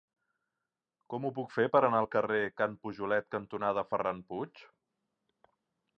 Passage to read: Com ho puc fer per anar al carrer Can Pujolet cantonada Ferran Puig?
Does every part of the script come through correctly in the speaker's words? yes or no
yes